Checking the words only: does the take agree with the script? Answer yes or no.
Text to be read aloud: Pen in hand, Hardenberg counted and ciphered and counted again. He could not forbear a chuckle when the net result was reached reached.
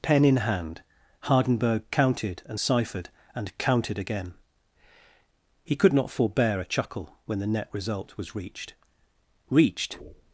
yes